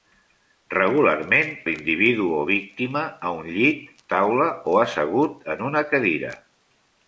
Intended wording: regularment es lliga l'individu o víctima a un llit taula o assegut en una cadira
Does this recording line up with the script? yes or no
no